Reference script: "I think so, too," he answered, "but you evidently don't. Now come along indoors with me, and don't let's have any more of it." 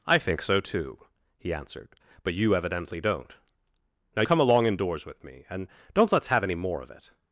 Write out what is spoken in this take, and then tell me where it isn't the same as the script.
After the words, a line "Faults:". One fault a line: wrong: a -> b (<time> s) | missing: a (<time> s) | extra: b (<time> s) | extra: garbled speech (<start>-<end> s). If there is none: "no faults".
"I think so, too," he answered, "but you evidently don't. Now come along indoors with me, and don't let's have any more of it."
Faults:
no faults